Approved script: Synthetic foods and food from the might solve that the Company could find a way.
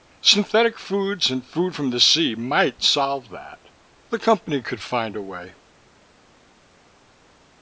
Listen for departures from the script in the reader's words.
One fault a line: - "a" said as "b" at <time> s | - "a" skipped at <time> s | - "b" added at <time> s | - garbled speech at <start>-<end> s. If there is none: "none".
- "sea" added at 2.0 s